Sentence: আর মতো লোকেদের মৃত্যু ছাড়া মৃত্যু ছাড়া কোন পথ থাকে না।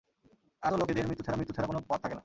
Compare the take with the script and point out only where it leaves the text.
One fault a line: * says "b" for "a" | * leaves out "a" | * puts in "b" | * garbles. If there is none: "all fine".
all fine